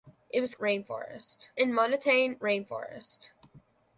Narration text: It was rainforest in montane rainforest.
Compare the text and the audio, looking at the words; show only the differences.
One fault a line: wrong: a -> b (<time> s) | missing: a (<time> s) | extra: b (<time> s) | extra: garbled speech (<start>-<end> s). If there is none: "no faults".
no faults